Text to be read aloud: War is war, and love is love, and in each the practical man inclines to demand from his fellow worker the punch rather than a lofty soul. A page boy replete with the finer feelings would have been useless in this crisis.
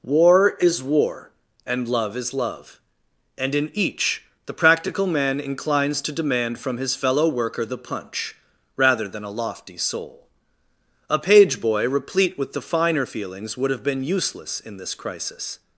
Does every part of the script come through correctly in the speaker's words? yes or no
yes